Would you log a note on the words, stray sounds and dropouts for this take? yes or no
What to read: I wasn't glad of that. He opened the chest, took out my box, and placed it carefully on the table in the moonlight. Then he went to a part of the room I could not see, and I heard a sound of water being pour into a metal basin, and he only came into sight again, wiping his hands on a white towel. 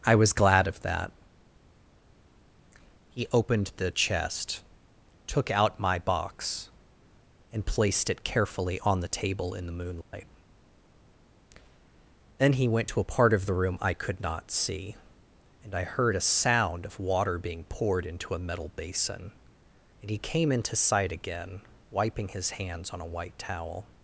yes